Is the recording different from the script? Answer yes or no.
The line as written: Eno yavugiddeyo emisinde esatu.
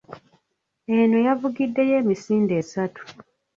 no